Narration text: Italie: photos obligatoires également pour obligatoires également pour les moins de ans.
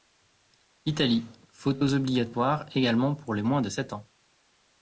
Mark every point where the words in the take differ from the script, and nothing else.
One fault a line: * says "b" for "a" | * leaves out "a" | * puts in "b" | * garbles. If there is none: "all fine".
* leaves out "obligatoires également pour"
* puts in "sept"